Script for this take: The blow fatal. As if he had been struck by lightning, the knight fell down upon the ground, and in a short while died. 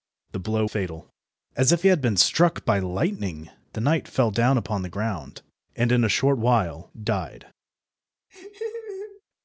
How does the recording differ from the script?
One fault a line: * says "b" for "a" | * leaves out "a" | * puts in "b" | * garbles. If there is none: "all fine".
all fine